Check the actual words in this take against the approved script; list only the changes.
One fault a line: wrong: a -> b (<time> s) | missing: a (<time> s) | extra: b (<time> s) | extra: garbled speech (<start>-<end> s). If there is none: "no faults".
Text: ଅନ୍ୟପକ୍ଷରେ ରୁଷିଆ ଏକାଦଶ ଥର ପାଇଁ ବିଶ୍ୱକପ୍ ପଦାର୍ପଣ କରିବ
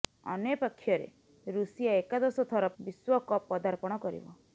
missing: ପାଇଁ (2.7 s)